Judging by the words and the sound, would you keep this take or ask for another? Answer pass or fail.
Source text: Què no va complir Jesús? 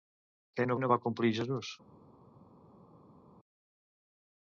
fail